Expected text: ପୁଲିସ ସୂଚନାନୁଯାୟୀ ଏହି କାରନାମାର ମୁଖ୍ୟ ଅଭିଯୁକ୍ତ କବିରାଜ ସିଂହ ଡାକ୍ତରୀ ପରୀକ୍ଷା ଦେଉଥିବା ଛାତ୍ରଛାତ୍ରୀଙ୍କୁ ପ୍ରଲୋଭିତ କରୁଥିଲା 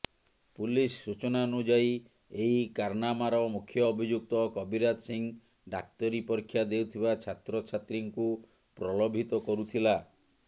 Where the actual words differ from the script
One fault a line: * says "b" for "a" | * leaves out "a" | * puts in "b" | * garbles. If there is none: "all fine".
all fine